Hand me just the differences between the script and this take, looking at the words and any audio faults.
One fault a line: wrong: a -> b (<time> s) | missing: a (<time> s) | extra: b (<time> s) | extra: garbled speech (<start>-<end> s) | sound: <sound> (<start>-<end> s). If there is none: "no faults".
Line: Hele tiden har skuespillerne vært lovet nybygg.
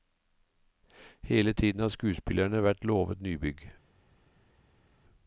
no faults